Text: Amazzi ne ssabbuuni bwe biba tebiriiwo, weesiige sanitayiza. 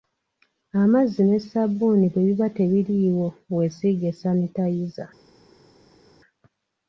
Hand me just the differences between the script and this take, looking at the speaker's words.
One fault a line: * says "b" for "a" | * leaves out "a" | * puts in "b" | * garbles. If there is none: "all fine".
all fine